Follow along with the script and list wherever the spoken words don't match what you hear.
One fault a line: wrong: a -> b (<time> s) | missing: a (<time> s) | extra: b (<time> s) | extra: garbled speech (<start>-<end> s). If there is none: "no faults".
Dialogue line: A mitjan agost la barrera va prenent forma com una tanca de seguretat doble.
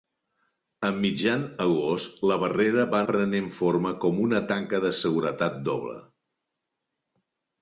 no faults